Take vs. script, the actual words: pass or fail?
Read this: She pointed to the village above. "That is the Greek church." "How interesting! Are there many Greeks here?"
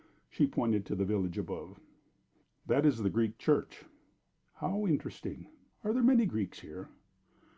pass